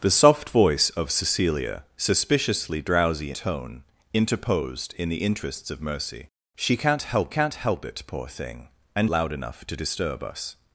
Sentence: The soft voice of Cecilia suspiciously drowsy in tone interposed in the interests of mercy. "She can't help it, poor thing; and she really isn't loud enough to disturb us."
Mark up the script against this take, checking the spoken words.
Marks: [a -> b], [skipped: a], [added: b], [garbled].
The soft voice of Cecilia suspiciously drowsy [skipped: in] tone interposed in the interests of mercy. "She can't help [added: can't help] it, poor thing; and [skipped: she really isn't] loud enough to disturb us."